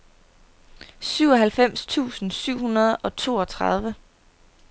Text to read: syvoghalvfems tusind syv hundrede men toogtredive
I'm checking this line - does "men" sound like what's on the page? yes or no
no